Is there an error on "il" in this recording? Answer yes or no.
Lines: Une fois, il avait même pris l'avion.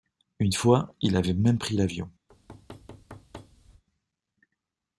no